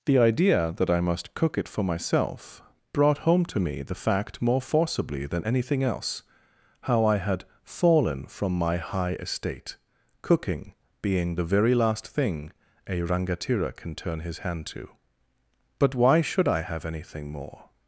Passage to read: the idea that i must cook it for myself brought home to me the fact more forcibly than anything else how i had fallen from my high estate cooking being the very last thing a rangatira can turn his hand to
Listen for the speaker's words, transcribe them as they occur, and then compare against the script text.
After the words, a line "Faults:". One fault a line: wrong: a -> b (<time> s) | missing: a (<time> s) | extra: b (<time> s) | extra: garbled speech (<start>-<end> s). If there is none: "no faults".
the idea that i must cook it for myself brought home to me the fact more forcibly than anything else how i had fallen from my high estate cooking being the very last thing a rangatira can turn his hand to but why should i have anything more
Faults:
extra: but why should i have anything more (15.8 s)